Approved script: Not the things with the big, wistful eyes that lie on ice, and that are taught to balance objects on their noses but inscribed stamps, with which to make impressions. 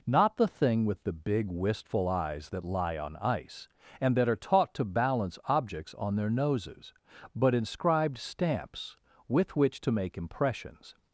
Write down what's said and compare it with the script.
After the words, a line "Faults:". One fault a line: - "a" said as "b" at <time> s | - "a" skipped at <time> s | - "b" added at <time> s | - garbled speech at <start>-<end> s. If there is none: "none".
Not the thing with the big, wistful eyes that lie on ice, and that are taught to balance objects on their noses but inscribed stamps, with which to make impressions.
Faults:
- "things" said as "thing" at 0.5 s